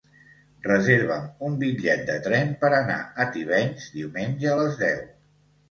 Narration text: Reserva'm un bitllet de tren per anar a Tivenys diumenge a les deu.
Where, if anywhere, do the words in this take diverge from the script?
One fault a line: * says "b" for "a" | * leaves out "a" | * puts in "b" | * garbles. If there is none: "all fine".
all fine